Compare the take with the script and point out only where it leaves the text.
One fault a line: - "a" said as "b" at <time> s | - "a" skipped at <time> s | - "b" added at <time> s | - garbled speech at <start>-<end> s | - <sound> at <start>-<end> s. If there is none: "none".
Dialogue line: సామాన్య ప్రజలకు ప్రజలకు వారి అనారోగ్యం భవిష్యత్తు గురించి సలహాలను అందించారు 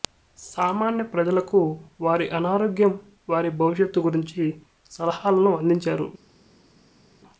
- "ప్రజలకు" skipped at 1.6 s
- "వారి" added at 3.3 s